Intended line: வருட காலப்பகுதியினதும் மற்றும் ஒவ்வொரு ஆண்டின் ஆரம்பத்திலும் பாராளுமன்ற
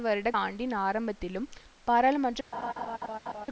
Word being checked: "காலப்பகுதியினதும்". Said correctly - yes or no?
no